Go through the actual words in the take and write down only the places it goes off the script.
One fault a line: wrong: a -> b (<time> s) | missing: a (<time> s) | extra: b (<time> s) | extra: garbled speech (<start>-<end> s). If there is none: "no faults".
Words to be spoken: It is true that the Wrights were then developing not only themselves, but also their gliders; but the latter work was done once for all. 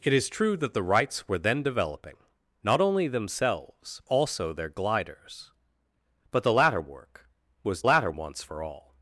missing: but (4.0 s)
wrong: done -> latter (7.8 s)